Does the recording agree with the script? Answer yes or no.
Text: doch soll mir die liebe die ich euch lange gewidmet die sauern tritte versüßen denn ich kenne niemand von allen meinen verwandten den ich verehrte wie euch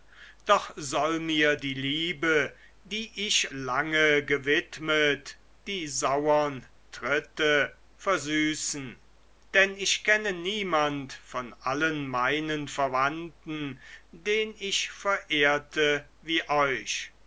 no